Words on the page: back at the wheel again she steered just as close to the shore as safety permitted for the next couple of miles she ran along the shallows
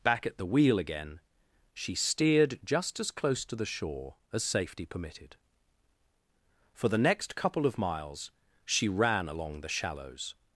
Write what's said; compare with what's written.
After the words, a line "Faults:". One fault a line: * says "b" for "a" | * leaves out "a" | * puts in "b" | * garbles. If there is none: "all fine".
back at the wheel again she steered just as close to the shore as safety permitted for the next couple of miles she ran along the shallows
Faults:
all fine